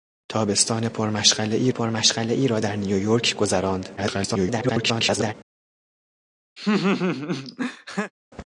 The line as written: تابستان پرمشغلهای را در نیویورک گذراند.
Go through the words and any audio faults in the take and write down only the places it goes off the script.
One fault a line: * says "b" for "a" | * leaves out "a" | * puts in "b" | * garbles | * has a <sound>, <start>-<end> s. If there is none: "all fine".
* puts in "پرمشغلهای"
* garbles
* has a laugh, 6.6-8.1 s